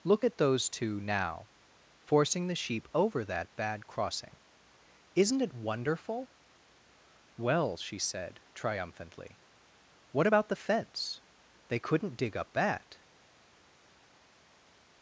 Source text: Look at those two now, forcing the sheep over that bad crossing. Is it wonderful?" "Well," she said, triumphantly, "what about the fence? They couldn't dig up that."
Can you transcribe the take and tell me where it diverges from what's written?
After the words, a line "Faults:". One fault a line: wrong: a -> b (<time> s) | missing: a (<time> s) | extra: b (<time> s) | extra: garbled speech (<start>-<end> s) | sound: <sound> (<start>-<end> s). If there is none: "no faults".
Look at those two now, forcing the sheep over that bad crossing. Isn't it wonderful?" "Well," she said, triumphantly, "what about the fence? They couldn't dig up that."
Faults:
wrong: Is -> Isn't (5.2 s)